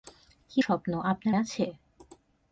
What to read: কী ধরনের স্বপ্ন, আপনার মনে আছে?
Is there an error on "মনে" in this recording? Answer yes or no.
yes